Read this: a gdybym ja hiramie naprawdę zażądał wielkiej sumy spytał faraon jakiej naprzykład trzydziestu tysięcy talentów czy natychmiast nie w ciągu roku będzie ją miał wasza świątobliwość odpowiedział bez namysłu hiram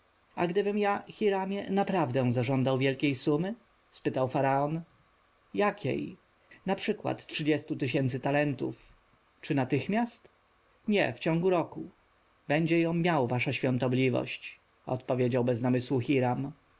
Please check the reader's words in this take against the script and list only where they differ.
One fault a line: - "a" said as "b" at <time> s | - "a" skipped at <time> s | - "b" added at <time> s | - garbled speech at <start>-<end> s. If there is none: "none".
none